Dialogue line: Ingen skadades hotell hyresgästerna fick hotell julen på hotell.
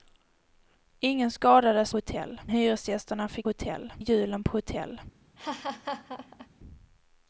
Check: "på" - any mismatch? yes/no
no